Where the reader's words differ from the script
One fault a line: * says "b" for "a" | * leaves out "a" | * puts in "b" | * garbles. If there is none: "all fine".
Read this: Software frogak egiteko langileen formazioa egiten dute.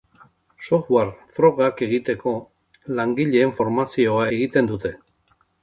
all fine